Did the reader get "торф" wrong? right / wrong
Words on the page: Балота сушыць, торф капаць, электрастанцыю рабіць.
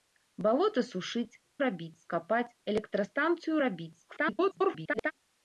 wrong